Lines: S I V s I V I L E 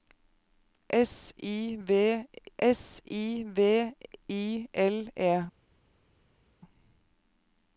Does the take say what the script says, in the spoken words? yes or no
yes